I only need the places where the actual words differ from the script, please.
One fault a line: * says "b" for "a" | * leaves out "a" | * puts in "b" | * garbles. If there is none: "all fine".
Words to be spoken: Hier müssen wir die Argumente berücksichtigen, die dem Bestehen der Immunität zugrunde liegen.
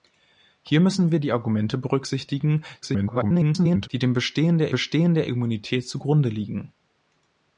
* garbles
* puts in "Bestehen der"